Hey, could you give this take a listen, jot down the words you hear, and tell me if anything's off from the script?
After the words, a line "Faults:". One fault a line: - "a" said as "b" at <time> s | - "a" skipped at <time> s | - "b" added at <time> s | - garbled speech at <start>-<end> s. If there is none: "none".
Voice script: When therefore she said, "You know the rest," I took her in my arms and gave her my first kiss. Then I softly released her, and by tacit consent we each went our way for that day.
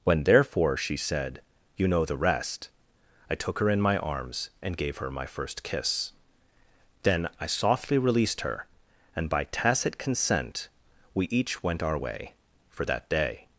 When therefore she said, "You know the rest," I took her in my arms and gave her my first kiss. Then I softly released her, and by tacit consent we each went our way for that day.
Faults:
none